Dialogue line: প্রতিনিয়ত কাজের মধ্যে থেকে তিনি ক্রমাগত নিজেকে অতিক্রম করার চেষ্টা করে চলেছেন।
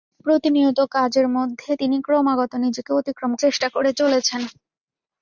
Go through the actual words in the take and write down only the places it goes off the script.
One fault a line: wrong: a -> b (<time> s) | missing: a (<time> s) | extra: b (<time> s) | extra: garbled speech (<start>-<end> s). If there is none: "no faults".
missing: থেকে (1.7 s)
missing: করার (3.3 s)